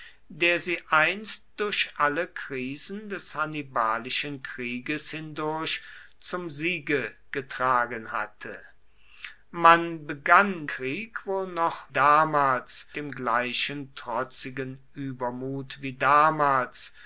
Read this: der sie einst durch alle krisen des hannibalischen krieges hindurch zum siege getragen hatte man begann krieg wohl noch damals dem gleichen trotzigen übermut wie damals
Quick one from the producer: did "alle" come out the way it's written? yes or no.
yes